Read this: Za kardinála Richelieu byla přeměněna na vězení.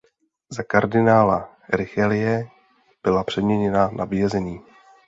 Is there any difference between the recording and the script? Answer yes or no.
no